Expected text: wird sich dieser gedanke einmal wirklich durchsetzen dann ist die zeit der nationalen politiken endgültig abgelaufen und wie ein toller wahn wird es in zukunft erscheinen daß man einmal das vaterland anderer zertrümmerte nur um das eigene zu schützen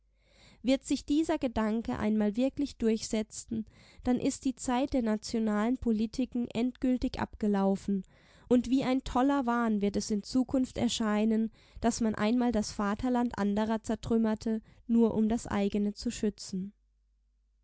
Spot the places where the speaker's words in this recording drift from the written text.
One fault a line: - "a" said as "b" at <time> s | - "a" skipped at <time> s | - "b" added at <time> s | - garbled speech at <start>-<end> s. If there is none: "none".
none